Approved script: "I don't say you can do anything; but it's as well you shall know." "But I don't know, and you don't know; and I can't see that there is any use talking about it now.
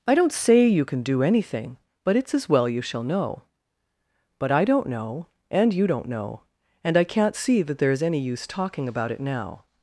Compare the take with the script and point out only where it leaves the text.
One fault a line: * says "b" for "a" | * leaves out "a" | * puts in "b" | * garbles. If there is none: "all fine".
all fine